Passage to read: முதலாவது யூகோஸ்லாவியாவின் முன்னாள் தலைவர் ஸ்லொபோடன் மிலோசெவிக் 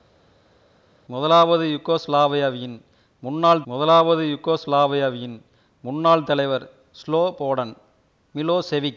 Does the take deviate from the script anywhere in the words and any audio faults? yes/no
yes